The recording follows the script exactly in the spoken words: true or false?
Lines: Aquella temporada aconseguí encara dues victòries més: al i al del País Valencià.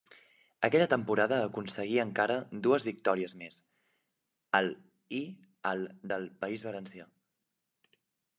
true